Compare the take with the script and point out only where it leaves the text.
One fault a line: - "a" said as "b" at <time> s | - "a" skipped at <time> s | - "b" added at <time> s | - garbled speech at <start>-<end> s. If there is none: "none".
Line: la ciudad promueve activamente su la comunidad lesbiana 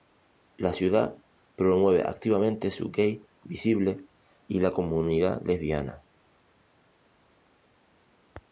- "gay visible y" added at 2.9 s